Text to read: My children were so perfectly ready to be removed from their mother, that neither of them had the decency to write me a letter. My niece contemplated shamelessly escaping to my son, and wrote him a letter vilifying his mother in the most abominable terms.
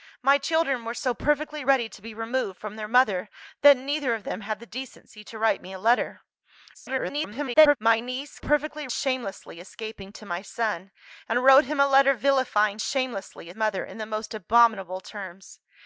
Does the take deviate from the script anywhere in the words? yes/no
yes